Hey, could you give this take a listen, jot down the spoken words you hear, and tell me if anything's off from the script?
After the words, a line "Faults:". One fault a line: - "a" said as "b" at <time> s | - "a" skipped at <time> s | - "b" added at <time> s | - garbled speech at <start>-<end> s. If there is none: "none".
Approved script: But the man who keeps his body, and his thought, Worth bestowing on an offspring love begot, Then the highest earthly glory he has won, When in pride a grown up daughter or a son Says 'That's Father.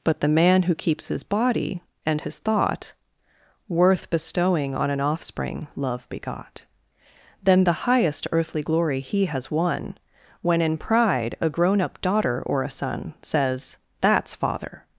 But the man who keeps his body, and his thought, Worth bestowing on an offspring love begot, Then the highest earthly glory he has won, When in pride a grown up daughter or a son Says 'That's Father.
Faults:
none